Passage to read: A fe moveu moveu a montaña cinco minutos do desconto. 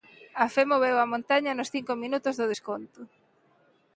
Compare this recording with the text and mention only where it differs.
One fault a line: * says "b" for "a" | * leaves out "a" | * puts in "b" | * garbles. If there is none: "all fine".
* leaves out "moveu"
* puts in "nos"